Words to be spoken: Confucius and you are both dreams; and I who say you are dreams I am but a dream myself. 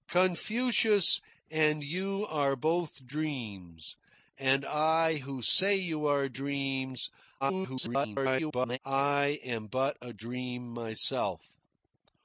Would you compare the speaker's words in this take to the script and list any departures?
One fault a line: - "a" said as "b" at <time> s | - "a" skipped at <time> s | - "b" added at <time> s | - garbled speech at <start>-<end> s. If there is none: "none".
- garbled speech at 7.4-8.8 s